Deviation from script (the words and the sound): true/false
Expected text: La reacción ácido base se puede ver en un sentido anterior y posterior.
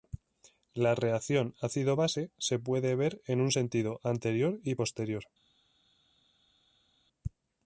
false